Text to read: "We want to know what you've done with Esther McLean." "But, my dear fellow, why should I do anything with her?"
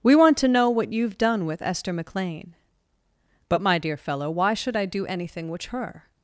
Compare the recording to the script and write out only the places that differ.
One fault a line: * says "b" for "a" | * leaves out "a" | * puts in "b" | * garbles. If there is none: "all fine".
* says "which" for "with"